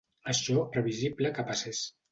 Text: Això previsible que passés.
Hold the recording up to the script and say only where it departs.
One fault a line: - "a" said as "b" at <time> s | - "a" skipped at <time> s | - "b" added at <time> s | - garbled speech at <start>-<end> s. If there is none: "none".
none